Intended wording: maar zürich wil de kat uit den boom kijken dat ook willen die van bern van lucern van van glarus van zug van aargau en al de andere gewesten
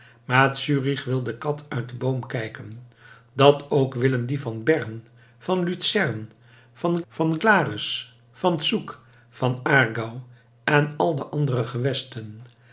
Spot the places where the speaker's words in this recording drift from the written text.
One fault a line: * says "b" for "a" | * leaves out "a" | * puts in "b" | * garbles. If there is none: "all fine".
all fine